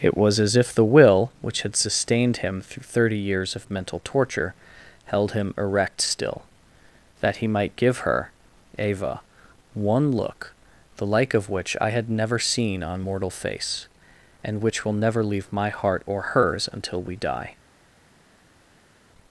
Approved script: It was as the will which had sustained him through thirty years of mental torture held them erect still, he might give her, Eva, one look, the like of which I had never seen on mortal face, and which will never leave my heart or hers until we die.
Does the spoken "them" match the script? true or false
false